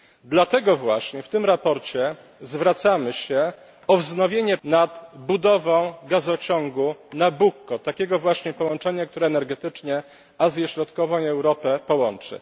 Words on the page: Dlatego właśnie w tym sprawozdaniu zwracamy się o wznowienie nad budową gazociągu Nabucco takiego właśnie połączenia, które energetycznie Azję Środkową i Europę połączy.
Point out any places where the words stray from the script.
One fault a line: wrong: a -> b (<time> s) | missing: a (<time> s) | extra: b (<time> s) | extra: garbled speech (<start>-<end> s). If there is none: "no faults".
no faults